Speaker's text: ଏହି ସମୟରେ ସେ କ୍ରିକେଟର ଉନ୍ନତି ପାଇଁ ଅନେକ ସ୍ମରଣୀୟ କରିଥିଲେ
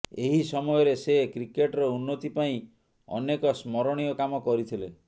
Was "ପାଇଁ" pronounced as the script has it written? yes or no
yes